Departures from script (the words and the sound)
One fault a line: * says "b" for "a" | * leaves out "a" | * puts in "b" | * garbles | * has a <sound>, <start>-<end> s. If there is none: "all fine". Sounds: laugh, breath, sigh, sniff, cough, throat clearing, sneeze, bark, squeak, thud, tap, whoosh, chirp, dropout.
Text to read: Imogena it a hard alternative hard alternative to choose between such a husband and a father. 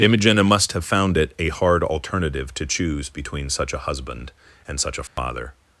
* puts in "must have found"
* leaves out "hard alternative"
* puts in "such"
* has a dropout, 5.1-5.2 s